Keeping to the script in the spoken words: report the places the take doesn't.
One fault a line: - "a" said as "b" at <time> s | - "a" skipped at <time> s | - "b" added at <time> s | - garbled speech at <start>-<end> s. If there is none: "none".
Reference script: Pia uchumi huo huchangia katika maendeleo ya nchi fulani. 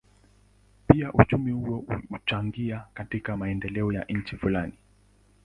none